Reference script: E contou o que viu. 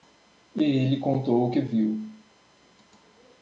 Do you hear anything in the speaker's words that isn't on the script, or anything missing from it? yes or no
yes